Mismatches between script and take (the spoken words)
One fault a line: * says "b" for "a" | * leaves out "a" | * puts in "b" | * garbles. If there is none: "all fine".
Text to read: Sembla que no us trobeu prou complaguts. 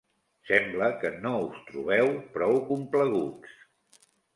all fine